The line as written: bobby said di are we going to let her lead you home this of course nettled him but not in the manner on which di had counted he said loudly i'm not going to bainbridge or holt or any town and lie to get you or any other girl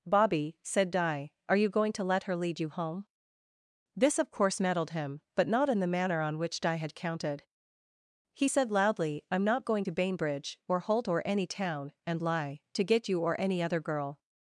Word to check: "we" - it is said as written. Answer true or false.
false